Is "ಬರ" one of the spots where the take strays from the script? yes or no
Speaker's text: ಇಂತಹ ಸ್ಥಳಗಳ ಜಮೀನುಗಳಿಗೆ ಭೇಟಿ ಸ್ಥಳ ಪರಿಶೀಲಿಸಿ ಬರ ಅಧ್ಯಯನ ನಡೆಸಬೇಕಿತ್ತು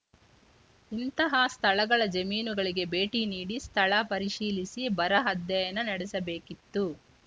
no